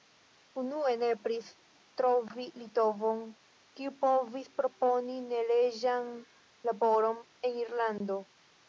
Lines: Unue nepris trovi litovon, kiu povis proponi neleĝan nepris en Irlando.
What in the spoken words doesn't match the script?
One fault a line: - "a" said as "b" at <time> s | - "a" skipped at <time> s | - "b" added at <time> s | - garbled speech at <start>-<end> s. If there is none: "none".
- "nepris" said as "laboron" at 6.7 s